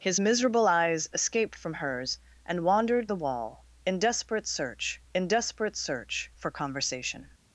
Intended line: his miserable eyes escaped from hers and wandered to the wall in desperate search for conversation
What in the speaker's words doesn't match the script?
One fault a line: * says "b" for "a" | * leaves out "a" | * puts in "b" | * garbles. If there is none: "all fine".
* leaves out "to"
* puts in "in desperate search"